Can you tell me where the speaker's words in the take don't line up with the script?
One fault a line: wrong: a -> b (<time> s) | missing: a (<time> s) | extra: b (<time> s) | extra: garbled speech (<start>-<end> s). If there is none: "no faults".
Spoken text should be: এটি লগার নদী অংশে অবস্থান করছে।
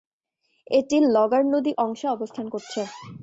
no faults